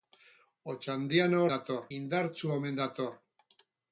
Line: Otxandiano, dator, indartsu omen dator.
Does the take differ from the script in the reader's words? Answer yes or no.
no